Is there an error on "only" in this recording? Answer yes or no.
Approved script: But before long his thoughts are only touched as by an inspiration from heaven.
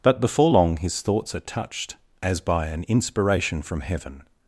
yes